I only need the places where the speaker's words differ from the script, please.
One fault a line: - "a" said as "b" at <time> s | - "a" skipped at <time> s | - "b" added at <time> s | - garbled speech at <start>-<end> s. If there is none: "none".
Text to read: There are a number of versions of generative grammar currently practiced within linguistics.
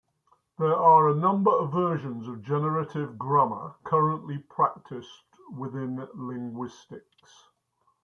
none